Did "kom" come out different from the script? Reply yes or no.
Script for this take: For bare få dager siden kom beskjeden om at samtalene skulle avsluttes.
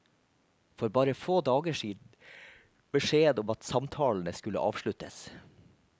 yes